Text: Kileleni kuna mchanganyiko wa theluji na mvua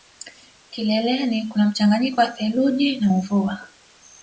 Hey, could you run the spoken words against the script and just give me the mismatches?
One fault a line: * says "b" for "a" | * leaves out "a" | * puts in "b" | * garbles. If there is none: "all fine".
all fine